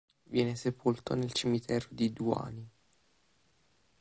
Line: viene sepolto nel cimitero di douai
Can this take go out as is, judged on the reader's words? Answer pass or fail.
pass